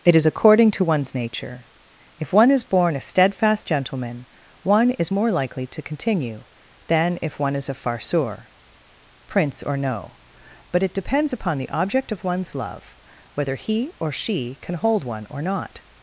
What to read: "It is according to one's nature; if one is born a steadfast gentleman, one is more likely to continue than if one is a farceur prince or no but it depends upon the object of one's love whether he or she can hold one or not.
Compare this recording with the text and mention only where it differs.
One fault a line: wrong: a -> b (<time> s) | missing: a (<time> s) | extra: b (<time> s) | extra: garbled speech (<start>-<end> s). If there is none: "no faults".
no faults